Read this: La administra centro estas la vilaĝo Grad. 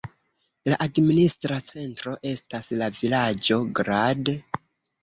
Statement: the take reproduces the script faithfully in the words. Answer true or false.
true